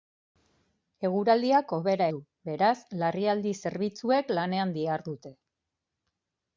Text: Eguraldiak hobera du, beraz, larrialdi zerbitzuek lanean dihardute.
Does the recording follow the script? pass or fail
pass